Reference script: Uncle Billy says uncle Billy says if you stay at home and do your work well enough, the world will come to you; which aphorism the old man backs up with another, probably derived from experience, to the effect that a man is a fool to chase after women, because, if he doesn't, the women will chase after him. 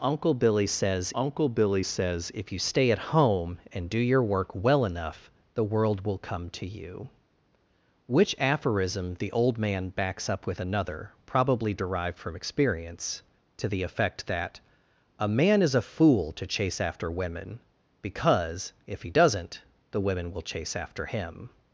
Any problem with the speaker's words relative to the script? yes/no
no